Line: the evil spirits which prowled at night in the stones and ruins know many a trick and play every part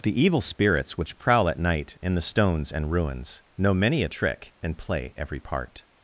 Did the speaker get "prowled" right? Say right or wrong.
wrong